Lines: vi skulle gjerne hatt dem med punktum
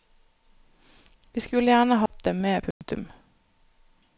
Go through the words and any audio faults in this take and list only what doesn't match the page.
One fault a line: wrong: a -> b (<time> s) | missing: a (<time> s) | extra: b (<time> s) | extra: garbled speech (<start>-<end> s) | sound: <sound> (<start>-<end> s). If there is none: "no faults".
sound: dropout (2.1-2.1 s)
sound: dropout (2.7-2.8 s)